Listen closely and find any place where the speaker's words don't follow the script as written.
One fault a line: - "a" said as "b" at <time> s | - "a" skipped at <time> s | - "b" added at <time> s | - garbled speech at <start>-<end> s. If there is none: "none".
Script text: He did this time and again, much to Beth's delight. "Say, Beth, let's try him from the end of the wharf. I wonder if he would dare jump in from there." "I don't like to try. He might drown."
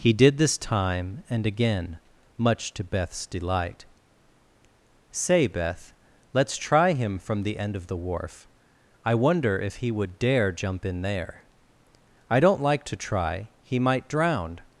- "from" skipped at 11.0 s